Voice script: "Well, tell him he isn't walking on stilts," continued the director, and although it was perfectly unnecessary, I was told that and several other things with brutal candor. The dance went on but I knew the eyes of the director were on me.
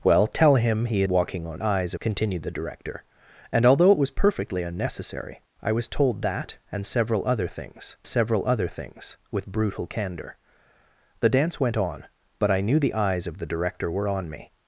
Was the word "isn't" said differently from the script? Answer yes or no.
yes